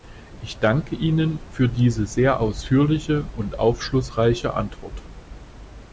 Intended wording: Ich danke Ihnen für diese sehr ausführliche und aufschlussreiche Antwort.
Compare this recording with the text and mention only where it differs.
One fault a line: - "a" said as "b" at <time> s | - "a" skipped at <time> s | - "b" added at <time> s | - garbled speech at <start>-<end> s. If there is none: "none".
none